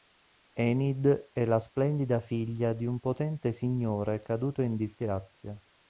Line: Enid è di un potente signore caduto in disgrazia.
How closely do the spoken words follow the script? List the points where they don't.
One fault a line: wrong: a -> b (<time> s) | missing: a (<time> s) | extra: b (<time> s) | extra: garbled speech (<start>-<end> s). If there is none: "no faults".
extra: la splendida figlia (1.4 s)